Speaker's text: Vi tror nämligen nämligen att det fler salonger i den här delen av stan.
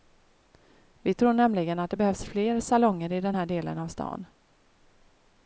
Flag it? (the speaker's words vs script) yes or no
yes